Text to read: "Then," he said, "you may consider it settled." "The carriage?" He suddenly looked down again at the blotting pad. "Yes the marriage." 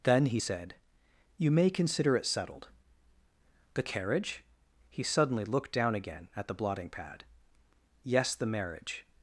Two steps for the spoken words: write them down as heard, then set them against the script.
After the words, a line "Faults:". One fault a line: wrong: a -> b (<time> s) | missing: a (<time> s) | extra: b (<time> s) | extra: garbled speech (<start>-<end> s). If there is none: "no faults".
"Then," he said, "you may consider it settled." "The carriage?" He suddenly looked down again at the blotting pad. "Yes the marriage."
Faults:
no faults